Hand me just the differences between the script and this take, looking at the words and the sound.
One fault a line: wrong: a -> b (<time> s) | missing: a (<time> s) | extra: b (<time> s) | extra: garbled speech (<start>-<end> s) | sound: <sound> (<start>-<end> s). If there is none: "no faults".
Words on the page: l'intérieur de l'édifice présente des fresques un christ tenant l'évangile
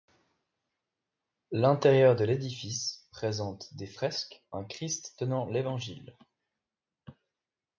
no faults